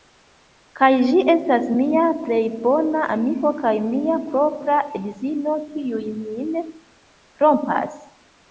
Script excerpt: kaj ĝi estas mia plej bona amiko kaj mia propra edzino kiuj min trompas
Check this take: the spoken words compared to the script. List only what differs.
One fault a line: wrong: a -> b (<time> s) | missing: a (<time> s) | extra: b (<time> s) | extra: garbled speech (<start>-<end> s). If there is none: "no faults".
no faults